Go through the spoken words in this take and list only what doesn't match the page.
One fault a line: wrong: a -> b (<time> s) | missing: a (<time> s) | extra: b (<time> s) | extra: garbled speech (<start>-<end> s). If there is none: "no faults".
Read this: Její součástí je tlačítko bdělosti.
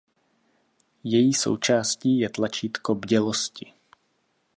no faults